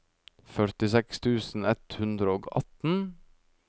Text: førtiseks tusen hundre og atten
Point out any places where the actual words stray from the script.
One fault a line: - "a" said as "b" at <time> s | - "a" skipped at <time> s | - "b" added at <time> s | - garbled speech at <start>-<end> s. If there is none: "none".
- "ett" added at 1.7 s